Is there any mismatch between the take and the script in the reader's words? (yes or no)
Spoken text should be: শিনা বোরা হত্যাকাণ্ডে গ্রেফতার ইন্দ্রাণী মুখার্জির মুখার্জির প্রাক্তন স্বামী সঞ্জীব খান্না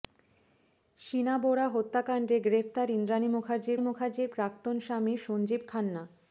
no